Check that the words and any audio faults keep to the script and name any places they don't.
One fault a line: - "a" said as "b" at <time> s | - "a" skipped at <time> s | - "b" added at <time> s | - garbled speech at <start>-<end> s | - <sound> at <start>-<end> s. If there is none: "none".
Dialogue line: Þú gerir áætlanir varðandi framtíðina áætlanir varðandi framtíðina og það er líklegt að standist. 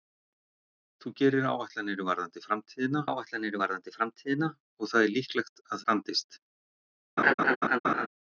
- laugh at 7.2-8.1 s